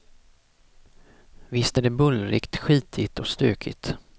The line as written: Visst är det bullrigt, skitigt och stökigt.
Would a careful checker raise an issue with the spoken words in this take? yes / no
no